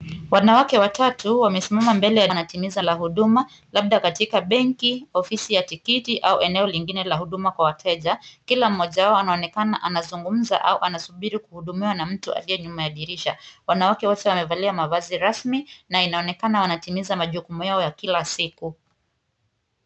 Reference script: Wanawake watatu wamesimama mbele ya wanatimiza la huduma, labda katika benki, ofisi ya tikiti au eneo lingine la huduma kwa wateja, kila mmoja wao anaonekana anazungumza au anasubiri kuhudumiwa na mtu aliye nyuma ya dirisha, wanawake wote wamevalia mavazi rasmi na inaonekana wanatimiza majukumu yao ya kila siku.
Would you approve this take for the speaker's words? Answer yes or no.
yes